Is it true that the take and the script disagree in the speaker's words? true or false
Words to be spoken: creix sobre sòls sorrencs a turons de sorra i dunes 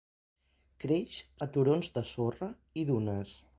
true